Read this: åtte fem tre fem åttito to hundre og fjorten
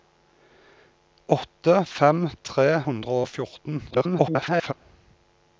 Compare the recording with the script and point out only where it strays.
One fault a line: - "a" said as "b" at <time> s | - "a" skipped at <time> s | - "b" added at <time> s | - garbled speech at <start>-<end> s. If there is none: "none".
- "fem åttito to" skipped at 2.8 s
- garbled speech at 3.9-4.7 s